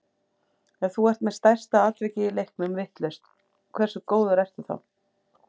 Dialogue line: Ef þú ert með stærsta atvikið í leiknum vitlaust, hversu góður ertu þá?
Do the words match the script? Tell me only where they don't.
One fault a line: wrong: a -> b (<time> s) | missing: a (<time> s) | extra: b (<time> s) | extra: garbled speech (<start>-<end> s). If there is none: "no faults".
no faults